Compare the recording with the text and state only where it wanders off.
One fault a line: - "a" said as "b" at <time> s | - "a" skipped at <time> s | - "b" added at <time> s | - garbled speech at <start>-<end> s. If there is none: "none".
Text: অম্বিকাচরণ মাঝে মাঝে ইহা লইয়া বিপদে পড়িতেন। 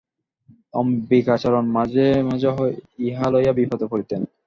none